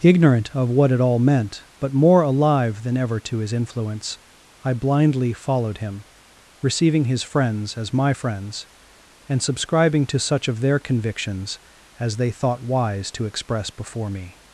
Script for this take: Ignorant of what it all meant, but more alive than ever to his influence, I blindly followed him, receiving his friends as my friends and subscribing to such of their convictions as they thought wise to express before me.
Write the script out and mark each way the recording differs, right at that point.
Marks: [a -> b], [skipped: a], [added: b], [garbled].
Ignorant of what it all meant, but more alive than ever to his influence, I blindly followed him, receiving his friends as my friends and subscribing to such of their convictions as they thought wise to express before me.